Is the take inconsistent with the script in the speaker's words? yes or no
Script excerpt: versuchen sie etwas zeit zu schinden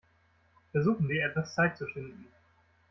no